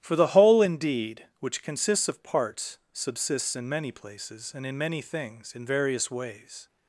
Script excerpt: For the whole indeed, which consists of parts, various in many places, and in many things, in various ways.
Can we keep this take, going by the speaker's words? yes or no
no